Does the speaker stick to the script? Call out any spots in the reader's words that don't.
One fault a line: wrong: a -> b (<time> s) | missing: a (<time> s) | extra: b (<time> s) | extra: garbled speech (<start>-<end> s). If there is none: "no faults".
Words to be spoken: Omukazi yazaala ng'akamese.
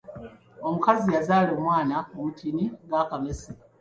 extra: omwana omutini (1.6 s)